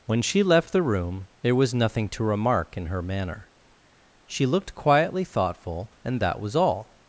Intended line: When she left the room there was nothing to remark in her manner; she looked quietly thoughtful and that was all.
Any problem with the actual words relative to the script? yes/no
no